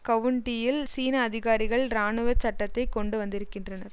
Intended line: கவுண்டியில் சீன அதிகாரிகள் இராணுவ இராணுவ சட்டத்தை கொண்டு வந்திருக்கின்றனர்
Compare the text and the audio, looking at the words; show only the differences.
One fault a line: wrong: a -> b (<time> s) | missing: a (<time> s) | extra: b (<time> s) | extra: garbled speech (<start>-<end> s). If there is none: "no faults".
missing: இராணுவ (2.3 s)